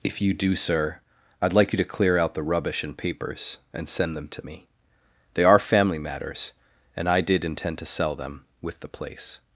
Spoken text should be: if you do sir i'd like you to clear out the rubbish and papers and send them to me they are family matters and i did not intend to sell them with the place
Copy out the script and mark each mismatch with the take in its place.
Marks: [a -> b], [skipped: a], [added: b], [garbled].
if you do sir i'd like you to clear out the rubbish and papers and send them to me they are family matters and i did [skipped: not] intend to sell them with the place